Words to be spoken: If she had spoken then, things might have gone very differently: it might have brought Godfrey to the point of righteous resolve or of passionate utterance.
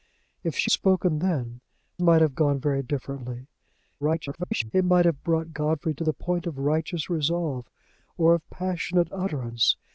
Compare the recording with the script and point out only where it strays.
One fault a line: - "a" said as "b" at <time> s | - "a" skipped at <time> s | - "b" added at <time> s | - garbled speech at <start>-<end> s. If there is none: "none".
- "had" skipped at 0.7 s
- "things" skipped at 1.6 s
- garbled speech at 4.0-4.7 s